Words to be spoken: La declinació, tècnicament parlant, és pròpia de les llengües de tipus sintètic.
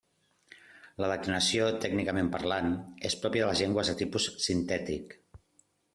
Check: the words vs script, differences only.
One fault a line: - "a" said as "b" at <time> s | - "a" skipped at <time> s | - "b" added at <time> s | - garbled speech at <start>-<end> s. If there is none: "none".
none